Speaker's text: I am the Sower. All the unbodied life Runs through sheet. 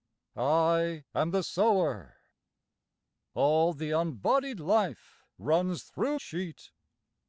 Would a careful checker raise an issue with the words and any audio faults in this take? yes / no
no